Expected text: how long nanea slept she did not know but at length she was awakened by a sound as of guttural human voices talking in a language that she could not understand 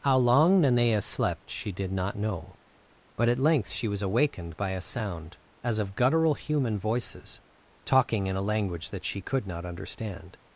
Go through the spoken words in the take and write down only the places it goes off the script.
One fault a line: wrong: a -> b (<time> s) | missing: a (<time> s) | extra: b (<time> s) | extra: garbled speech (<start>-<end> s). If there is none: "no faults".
no faults